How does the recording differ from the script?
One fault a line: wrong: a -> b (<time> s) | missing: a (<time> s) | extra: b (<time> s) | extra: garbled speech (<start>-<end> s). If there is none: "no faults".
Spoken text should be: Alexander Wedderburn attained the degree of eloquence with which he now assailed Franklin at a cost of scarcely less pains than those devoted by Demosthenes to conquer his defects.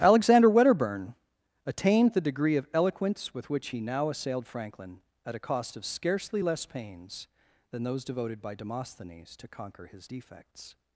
no faults